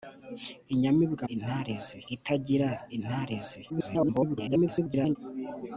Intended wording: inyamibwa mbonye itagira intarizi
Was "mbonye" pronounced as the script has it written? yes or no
no